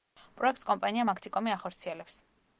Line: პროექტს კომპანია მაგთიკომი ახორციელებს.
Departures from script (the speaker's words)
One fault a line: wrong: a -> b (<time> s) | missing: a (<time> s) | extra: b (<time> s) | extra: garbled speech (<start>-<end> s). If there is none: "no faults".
no faults